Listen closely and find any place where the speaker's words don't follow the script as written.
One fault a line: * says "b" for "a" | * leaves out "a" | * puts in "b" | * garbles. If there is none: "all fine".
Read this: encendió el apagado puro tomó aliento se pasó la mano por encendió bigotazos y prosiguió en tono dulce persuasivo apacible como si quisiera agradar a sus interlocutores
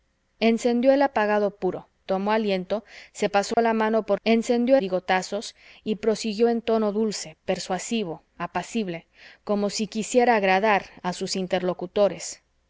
all fine